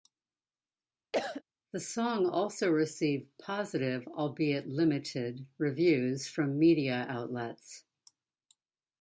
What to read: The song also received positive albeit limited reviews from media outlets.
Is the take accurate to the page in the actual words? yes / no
yes